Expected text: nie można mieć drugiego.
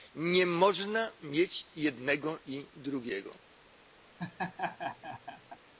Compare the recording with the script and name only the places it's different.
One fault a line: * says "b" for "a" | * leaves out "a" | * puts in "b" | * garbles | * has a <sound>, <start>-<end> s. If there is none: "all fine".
* puts in "jednego i"
* has a laugh, 4.2-5.6 s